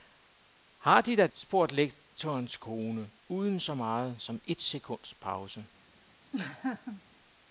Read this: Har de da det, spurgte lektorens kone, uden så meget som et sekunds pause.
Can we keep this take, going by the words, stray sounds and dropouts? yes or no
no